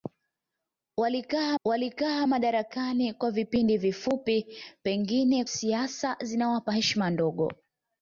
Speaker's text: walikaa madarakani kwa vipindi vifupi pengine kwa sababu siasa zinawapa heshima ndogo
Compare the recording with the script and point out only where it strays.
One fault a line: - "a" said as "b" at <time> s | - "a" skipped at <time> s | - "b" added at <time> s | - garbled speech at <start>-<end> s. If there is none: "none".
- "walikaa" added at 1.6 s
- "kwa sababu" skipped at 5.4 s